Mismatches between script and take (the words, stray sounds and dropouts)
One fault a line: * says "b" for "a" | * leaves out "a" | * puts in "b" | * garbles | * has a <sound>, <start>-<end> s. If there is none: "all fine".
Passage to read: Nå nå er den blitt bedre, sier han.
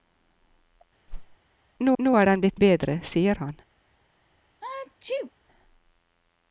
* has a whoosh, 1.1-1.4 s
* has a sneeze, 4.6-5.3 s